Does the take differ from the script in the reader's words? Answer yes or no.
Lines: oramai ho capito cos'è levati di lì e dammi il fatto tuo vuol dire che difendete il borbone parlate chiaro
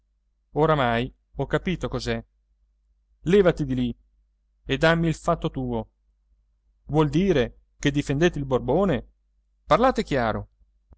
no